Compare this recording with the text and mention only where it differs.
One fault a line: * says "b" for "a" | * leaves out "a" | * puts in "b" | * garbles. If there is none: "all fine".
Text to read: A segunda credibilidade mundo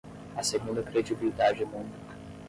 all fine